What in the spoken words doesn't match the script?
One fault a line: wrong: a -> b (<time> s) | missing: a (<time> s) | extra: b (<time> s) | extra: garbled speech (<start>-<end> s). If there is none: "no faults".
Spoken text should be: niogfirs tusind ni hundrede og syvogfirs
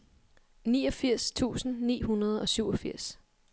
no faults